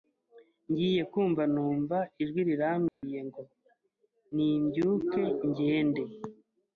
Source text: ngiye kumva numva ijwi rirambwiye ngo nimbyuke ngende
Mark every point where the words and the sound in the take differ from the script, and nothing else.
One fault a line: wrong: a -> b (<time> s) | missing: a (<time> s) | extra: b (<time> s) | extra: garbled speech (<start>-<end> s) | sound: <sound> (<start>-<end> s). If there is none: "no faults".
sound: dropout (2.9-3.0 s)